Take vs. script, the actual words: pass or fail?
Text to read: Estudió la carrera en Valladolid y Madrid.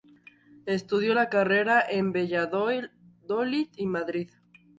pass